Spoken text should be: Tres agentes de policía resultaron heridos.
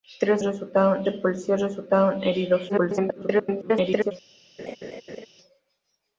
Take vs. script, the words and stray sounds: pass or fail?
fail